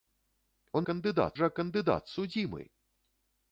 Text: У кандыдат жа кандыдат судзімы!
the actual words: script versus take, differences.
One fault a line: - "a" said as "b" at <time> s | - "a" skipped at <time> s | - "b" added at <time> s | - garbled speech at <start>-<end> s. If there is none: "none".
none